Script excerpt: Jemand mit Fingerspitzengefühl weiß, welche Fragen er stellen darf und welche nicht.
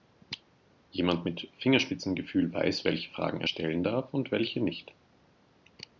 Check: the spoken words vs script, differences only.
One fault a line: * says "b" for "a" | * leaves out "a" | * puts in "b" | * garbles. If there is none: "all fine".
all fine